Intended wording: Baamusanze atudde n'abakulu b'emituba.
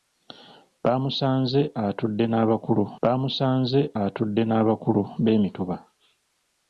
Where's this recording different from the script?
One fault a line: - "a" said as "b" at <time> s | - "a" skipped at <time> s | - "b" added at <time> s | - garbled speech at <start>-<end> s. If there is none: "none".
- "baamusanze atudde n'abakulu" added at 3.0 s